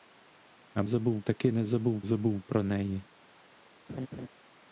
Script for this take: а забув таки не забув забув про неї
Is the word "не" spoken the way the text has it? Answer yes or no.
yes